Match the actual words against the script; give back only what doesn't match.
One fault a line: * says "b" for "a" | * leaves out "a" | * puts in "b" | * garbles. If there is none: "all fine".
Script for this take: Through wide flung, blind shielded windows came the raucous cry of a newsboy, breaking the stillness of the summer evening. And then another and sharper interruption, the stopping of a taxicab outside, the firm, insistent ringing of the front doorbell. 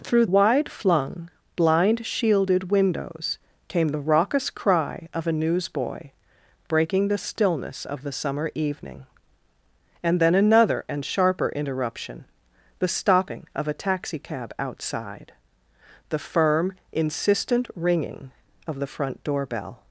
all fine